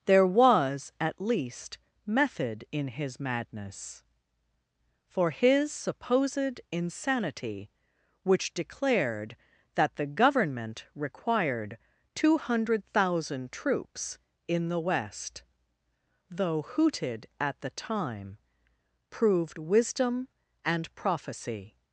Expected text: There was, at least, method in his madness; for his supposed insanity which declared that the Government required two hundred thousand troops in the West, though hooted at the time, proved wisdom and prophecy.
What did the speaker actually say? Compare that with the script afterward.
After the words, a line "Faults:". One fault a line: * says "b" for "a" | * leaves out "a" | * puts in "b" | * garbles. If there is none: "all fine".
There was, at least, method in his madness; for his supposed insanity which declared that the Government required two hundred thousand troops in the West, though hooted at the time, proved wisdom and prophecy.
Faults:
all fine